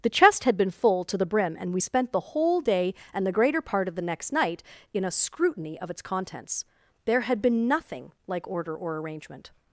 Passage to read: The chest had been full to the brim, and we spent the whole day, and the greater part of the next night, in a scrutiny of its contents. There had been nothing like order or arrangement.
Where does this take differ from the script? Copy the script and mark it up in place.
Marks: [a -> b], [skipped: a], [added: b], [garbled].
The chest had been full to the brim, and we spent the whole day, and the greater part of the next night, in a scrutiny of its contents. There had been nothing like order or arrangement.